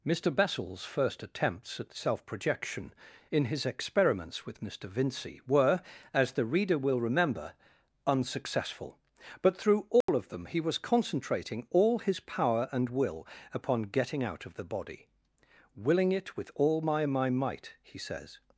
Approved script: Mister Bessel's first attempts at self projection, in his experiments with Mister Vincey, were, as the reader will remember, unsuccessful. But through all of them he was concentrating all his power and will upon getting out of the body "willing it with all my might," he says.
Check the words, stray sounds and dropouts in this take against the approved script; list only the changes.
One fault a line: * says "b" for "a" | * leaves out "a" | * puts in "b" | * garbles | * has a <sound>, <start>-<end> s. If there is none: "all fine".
* has a dropout, 10.0-10.1 s
* puts in "my"